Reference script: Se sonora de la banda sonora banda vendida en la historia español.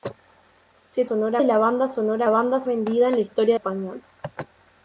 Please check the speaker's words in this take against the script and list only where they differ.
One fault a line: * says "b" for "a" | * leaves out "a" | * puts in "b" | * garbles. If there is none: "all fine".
all fine